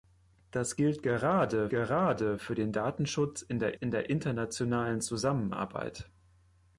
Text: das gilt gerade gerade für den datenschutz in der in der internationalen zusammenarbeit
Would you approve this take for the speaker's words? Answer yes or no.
yes